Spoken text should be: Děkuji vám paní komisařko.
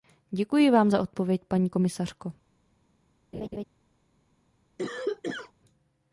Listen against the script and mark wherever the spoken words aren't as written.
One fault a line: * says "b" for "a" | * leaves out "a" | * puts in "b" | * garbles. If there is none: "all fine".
* puts in "za odpověď"